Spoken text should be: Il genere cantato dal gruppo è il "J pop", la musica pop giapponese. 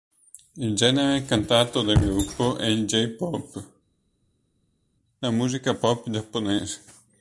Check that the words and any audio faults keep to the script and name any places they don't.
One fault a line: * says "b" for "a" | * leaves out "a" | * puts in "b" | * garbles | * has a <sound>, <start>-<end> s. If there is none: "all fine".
all fine